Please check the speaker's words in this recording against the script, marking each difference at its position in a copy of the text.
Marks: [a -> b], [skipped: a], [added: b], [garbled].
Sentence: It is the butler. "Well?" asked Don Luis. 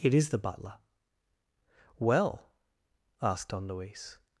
It is the butler. "Well?" asked Don Luis.